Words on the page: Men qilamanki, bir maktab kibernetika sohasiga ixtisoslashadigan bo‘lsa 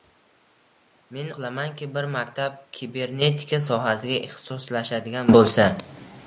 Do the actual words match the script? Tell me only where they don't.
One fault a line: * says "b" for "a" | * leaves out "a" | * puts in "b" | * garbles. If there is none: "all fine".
all fine